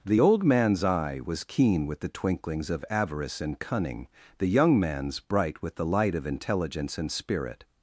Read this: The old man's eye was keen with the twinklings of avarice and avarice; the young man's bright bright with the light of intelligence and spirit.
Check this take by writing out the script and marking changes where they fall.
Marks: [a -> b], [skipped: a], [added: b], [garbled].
The old man's eye was keen with the twinklings of avarice and [avarice; -> cunning] the young man's bright [skipped: bright] with the light of intelligence and spirit.